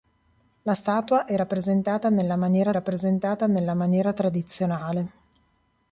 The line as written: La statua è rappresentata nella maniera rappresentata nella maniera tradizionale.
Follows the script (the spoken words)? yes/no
yes